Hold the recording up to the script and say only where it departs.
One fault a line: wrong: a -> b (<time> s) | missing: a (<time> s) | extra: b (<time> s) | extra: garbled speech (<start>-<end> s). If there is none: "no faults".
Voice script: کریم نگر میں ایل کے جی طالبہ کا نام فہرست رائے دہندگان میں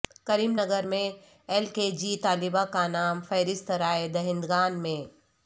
no faults